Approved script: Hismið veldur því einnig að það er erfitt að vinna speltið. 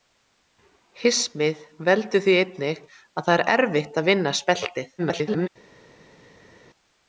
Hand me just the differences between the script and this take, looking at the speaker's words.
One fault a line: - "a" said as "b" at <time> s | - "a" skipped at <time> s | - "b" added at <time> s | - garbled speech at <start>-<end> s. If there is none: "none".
- garbled speech at 5.0-5.5 s